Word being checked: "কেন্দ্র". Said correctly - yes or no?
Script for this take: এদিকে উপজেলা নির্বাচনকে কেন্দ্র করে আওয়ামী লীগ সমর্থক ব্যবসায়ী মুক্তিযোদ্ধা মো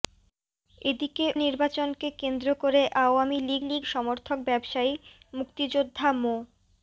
yes